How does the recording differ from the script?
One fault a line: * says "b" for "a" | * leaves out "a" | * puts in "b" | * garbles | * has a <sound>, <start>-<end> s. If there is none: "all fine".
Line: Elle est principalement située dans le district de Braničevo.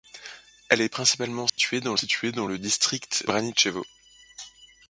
* has a dropout, 1.5-1.6 s
* puts in "située dans"
* leaves out "de"